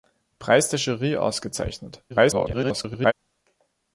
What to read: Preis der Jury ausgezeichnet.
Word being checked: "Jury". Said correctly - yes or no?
yes